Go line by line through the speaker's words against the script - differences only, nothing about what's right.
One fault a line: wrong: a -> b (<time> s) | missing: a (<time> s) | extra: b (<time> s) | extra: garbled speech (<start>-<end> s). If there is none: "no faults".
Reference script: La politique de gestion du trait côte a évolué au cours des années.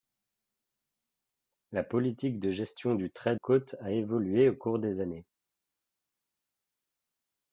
no faults